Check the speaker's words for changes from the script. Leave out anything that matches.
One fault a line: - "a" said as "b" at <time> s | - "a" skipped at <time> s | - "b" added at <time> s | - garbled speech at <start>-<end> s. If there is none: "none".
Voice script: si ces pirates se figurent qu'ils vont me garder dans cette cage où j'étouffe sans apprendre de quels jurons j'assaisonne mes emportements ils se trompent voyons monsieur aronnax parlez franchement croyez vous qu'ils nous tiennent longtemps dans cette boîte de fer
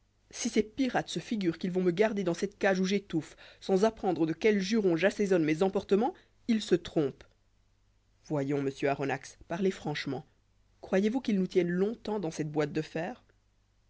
none